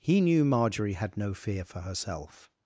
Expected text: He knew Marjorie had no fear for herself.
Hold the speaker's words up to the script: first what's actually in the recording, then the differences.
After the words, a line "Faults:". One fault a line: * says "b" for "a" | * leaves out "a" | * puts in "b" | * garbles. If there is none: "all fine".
He knew Marjorie had no fear for herself.
Faults:
all fine